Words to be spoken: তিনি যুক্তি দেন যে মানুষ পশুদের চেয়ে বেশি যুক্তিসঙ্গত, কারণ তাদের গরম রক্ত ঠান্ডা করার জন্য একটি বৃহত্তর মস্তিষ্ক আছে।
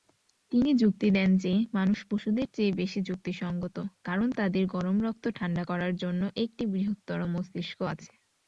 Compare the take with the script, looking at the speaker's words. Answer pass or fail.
pass